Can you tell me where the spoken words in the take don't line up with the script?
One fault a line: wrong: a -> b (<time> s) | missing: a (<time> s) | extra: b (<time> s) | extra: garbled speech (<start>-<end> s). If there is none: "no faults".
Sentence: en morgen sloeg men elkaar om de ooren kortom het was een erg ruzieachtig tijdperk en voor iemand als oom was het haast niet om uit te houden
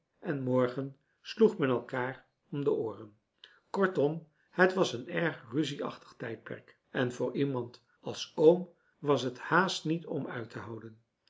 no faults